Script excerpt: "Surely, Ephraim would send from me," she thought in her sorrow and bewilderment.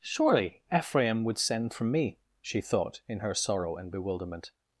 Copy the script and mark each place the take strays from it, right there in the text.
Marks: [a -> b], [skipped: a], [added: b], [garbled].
"Surely, Ephraim would send from me," she thought in her sorrow and bewilderment.